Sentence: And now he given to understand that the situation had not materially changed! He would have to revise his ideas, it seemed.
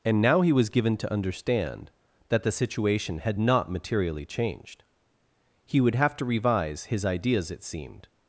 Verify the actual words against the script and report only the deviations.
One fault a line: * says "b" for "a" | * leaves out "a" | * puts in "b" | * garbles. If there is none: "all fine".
* puts in "was"